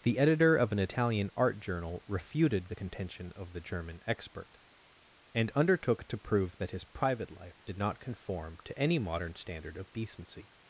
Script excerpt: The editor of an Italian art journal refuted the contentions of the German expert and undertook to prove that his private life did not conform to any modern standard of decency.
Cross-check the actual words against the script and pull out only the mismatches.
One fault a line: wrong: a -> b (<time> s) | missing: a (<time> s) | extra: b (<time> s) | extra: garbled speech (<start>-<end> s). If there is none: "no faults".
wrong: contentions -> contention (2.7 s)